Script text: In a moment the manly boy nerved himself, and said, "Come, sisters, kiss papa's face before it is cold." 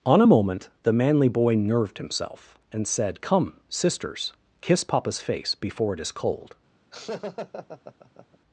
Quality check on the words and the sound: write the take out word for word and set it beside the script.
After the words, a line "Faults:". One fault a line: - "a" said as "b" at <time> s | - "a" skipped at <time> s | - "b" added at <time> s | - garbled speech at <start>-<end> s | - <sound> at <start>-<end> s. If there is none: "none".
On a moment the manly boy nerved himself, and said, "Come, sisters, kiss papa's face before it is cold."
Faults:
- "In" said as "On" at 0.0 s
- laugh at 6.9-8.4 s